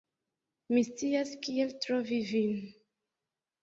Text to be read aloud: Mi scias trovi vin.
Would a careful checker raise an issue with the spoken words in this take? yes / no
yes